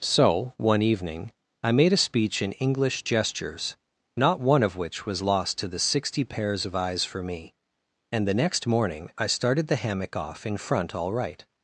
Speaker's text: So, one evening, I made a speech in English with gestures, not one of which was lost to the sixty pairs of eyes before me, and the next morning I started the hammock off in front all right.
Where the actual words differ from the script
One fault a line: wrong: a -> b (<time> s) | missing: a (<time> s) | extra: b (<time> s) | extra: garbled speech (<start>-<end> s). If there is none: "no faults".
missing: with (3.0 s)
wrong: before -> for (7.0 s)